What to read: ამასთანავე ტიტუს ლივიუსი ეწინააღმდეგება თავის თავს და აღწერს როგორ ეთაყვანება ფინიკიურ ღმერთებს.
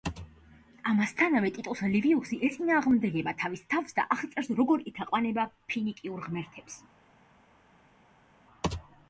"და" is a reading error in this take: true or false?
false